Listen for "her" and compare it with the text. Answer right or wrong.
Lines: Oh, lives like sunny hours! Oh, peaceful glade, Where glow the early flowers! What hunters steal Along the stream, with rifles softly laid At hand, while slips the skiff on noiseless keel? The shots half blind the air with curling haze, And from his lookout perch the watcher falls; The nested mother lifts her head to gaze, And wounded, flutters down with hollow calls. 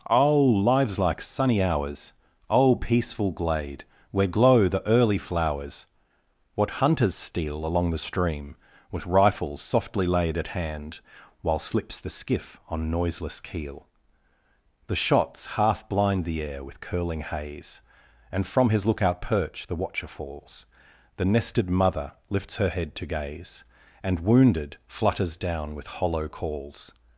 right